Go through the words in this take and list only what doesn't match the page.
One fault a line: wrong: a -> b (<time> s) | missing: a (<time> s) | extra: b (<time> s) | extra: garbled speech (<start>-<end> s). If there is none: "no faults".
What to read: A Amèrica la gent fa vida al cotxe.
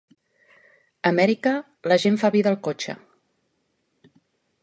no faults